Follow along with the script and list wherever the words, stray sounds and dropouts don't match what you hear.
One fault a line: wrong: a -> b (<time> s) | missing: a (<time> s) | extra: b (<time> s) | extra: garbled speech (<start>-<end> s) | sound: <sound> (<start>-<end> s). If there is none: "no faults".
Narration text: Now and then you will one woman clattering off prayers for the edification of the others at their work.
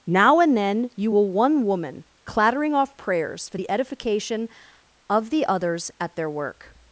no faults